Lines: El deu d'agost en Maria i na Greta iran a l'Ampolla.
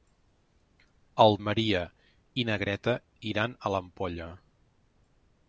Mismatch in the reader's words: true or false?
true